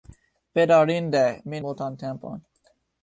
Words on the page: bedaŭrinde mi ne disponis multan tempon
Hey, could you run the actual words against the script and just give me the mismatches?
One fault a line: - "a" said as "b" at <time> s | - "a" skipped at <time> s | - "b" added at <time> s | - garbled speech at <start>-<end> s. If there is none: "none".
- "ne disponis" skipped at 1.6 s